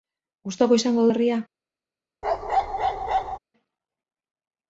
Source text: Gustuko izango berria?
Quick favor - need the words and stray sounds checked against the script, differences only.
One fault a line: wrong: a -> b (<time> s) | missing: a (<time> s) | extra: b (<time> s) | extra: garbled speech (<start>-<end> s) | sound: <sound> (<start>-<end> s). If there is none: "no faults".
sound: bark (2.2-3.4 s)